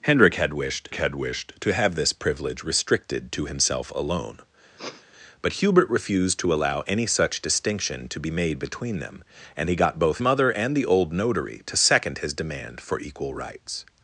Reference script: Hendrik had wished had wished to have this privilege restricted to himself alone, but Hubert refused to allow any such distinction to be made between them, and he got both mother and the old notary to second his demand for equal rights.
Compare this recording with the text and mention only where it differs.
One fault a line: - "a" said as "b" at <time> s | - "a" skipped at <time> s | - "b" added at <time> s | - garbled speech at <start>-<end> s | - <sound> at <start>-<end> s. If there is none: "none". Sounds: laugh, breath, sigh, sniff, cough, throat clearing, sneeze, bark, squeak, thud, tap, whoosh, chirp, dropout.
- sniff at 4.8-5.1 s